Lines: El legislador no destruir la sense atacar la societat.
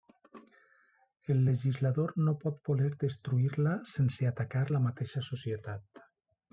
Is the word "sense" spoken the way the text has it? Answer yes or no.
yes